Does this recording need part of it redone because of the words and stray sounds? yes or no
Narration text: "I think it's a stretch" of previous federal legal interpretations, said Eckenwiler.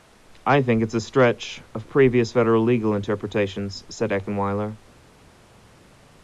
no